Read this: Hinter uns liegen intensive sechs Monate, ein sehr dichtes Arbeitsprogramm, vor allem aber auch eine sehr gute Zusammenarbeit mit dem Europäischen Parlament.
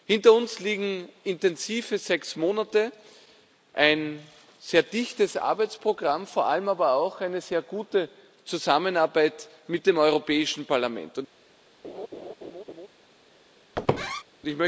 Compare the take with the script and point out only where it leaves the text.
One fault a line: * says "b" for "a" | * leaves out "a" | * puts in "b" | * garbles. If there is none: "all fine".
all fine